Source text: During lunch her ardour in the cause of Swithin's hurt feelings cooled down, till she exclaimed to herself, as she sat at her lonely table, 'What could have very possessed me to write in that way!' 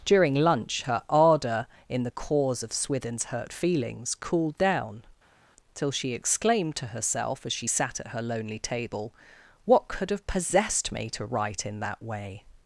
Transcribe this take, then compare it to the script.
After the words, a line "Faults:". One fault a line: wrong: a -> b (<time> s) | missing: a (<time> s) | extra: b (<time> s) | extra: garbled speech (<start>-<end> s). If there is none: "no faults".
During lunch her ardour in the cause of Swithin's hurt feelings cooled down, till she exclaimed to herself, as she sat at her lonely table, 'What could have possessed me to write in that way!'
Faults:
missing: very (10.3 s)